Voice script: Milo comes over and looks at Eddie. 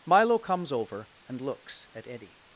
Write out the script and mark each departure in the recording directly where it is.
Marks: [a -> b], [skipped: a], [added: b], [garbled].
Milo comes over and looks at Eddie.